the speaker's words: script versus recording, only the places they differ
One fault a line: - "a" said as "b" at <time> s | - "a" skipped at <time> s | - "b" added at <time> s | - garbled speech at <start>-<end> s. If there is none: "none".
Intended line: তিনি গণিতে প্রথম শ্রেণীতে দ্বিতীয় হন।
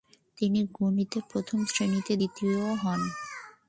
none